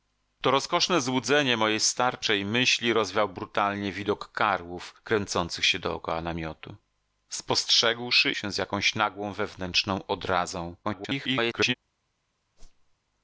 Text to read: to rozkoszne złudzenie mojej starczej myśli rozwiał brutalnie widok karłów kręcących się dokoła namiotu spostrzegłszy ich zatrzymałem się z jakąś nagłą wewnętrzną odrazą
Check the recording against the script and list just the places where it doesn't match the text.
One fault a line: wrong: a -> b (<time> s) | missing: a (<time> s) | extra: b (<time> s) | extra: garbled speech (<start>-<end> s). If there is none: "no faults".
missing: ich zatrzymałem (8.3 s)
extra: garbled speech (10.8-11.7 s)